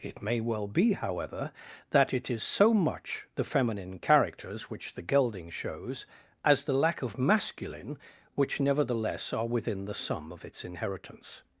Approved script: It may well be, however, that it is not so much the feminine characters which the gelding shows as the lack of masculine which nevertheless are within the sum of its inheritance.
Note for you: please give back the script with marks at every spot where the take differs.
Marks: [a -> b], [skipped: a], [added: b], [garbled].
It may well be, however, that it is [skipped: not] so much the feminine characters which the gelding shows as the lack of masculine which nevertheless are within the sum of its inheritance.